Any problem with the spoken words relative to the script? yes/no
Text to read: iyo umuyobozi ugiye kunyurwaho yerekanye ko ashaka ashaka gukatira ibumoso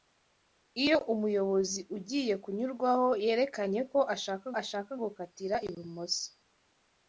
no